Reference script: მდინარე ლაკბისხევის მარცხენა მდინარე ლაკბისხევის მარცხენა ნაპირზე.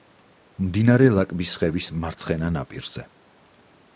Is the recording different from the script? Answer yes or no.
yes